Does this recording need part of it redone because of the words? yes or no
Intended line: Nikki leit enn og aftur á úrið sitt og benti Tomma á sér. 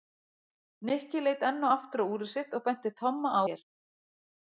no